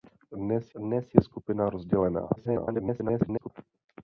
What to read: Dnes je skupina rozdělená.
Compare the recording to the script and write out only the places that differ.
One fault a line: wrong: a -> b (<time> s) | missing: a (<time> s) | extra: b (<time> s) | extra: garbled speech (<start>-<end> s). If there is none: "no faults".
extra: dnes (0.7 s)
extra: garbled speech (2.4-3.5 s)